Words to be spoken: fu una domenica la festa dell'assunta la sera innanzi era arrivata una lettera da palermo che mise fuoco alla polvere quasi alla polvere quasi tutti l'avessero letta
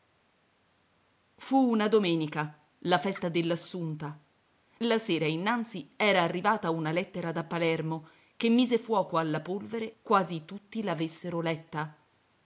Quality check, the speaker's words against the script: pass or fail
fail